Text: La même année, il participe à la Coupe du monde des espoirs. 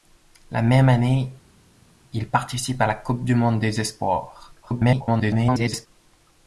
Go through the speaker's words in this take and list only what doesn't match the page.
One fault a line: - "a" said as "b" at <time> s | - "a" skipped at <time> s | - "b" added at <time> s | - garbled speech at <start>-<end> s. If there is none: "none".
- garbled speech at 4.6-5.9 s